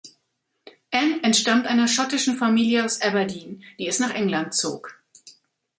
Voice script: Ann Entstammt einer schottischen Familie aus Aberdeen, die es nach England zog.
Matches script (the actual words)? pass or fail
pass